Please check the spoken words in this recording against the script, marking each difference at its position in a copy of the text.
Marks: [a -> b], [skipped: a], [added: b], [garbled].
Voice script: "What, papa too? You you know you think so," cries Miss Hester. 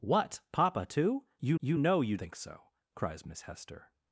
"What, papa too? You you know you think so," cries Miss Hester.